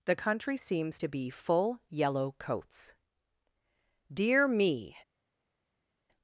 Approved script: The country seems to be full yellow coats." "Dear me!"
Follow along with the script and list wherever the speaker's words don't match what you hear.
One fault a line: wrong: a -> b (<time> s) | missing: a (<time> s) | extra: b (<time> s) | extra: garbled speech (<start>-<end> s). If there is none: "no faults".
no faults